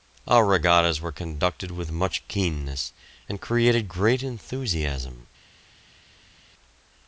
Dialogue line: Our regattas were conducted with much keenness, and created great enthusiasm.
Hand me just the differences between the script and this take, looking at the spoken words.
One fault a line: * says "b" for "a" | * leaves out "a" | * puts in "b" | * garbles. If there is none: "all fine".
all fine